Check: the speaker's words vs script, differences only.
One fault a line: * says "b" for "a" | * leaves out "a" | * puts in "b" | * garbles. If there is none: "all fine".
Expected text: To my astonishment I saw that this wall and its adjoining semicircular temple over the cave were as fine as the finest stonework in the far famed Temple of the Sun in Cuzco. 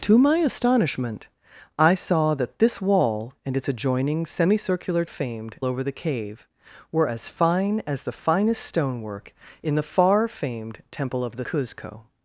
* says "famed" for "temple"
* leaves out "Sun in"